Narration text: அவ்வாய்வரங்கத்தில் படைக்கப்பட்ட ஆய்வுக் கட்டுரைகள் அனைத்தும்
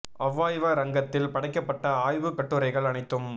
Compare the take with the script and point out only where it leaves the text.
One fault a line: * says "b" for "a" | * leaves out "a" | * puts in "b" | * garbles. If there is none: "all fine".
all fine